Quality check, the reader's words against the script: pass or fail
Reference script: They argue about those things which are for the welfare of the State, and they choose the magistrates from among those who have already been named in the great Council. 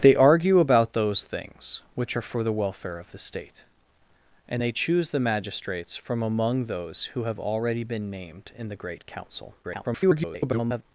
fail